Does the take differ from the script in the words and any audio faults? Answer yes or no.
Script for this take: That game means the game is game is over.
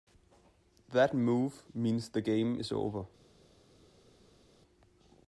yes